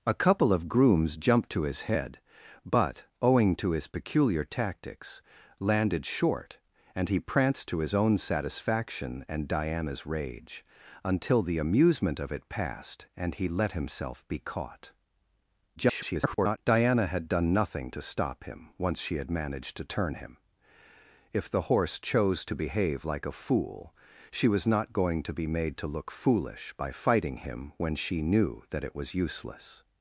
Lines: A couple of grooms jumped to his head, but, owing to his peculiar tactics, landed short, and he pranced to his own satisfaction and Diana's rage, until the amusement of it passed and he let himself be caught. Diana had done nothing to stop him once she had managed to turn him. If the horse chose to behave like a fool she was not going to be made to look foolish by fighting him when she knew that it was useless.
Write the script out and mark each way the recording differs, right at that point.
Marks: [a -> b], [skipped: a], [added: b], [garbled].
A couple of grooms jumped to his head, but, owing to his peculiar tactics, landed short, and he pranced to his own satisfaction and Diana's rage, until the amusement of it passed and he let himself be caught. [garbled] Diana had done nothing to stop him once she had managed to turn him. If the horse chose to behave like a fool she was not going to be made to look foolish by fighting him when she knew that it was useless.